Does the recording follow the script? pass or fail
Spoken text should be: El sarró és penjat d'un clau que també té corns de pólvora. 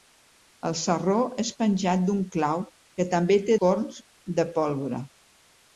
pass